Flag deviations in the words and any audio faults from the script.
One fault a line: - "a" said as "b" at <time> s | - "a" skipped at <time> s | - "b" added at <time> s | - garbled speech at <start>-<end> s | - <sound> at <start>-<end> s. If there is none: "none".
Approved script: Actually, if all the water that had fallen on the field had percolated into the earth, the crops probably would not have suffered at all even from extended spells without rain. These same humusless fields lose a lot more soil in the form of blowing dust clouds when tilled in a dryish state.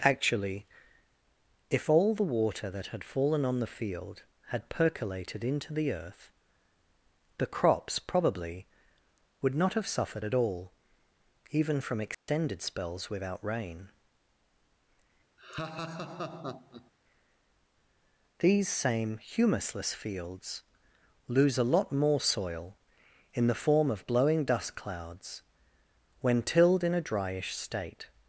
- dropout at 12.1-12.3 s
- laugh at 15.4-16.9 s